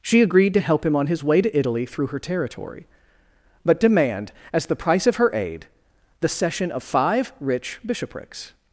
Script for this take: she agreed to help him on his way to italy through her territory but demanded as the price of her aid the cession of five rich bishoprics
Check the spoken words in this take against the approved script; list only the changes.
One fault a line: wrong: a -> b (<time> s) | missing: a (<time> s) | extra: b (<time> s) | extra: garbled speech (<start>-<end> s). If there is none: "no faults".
wrong: demanded -> demand (3.8 s)